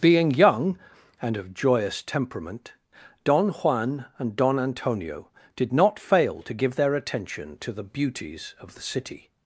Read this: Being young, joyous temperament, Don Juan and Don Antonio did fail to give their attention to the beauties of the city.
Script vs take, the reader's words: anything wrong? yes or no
yes